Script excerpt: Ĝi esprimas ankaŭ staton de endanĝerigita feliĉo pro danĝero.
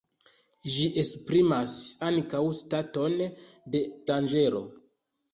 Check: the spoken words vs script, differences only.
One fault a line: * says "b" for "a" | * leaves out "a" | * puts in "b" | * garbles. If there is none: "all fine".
* leaves out "endanĝerigita feliĉo pro"